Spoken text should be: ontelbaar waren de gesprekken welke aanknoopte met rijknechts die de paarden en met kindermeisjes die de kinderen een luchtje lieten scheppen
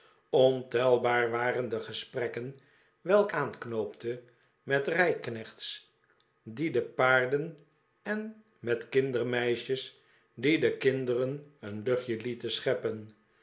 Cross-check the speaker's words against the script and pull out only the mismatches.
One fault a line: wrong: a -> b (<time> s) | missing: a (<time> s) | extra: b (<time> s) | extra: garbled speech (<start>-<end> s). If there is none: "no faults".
no faults